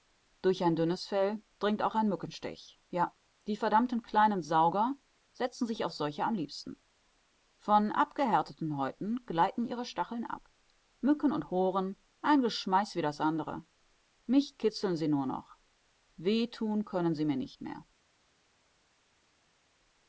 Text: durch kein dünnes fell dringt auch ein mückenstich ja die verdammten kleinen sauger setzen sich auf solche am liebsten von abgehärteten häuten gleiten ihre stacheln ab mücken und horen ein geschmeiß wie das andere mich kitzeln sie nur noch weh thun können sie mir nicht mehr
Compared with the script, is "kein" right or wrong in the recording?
wrong